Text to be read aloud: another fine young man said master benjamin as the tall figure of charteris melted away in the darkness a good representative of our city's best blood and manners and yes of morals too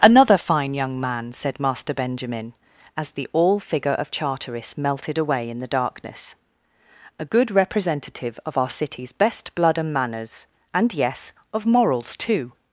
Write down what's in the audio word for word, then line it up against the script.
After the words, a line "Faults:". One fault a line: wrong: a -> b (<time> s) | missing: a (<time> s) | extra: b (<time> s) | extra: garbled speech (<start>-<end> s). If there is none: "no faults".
another fine young man said master benjamin as the all figure of charteris melted away in the darkness a good representative of our city's best blood and manners and yes of morals too
Faults:
wrong: tall -> all (3.3 s)